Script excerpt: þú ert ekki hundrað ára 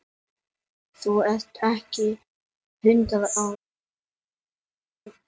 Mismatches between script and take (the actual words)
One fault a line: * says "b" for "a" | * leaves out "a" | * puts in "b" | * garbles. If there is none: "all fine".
all fine